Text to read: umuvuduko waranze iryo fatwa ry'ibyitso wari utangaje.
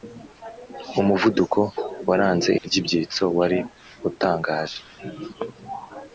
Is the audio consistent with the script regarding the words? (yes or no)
no